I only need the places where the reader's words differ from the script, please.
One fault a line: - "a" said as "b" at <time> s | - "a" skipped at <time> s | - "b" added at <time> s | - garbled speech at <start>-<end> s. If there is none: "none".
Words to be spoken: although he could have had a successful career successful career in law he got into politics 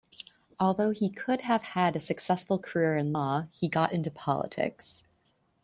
- "successful career" skipped at 3.0 s